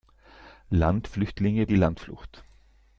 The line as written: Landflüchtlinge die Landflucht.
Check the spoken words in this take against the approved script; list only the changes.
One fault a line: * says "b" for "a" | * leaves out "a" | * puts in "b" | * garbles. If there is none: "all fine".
all fine